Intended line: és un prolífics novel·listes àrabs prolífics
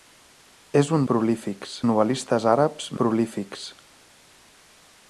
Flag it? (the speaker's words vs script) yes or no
no